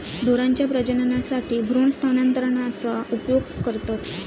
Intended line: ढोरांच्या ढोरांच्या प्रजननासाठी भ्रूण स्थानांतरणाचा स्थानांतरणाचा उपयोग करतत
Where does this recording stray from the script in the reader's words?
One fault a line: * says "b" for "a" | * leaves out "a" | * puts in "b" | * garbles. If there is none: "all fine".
* leaves out "ढोरांच्या"
* leaves out "स्थानांतरणाचा"